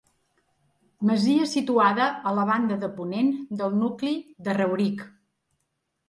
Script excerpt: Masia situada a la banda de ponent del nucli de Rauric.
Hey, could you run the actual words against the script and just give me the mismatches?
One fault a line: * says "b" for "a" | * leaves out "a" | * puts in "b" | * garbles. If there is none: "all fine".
all fine